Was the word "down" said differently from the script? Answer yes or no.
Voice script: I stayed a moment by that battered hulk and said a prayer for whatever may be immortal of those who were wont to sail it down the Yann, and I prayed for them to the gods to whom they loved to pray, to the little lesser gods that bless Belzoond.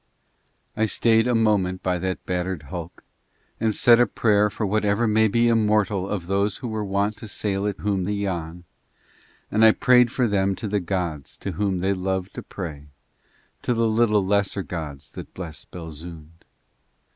yes